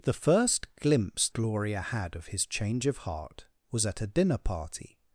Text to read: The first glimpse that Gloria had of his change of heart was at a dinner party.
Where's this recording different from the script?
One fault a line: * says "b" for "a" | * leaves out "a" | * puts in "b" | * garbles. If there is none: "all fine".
* leaves out "that"